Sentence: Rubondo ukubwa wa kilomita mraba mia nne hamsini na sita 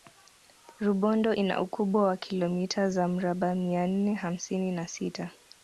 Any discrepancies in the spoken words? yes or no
yes